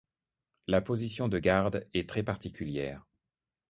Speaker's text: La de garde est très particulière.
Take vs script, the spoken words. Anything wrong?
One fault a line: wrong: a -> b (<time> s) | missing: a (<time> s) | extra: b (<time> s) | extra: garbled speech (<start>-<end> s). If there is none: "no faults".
extra: position (0.8 s)